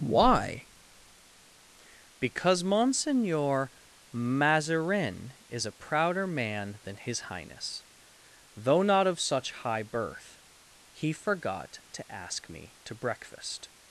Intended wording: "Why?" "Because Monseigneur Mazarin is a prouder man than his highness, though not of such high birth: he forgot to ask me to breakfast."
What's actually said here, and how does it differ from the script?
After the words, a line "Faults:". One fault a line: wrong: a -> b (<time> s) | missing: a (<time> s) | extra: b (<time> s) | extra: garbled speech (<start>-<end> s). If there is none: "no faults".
"Why?" "Because Monseigneur Mazarin is a prouder man than his highness, though not of such high birth: he forgot to ask me to breakfast."
Faults:
no faults